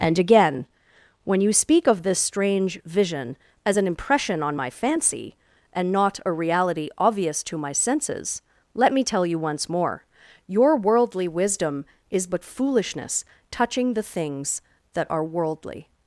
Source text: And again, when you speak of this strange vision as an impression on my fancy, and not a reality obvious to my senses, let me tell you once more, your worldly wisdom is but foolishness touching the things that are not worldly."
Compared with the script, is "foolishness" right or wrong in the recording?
right